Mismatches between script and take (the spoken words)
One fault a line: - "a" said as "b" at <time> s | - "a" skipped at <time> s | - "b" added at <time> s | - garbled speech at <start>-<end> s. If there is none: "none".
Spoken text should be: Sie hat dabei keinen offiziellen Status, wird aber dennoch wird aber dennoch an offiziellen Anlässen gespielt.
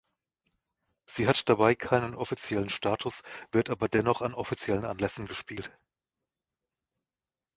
- "wird aber dennoch" skipped at 4.2 s